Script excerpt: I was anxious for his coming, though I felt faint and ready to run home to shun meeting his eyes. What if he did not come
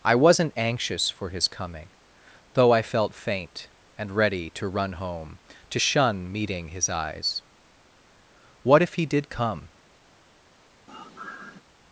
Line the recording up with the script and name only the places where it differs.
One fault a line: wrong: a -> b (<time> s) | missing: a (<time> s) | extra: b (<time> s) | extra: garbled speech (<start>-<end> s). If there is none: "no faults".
wrong: was -> wasn't (0.1 s)
missing: not (9.3 s)